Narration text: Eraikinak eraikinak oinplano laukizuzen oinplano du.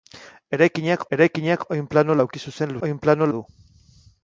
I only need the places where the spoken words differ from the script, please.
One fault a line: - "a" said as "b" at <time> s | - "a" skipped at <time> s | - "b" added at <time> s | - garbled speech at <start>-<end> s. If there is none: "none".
none